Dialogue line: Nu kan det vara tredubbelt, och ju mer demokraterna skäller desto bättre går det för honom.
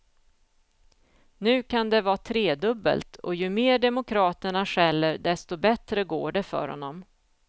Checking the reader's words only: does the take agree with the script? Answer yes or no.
yes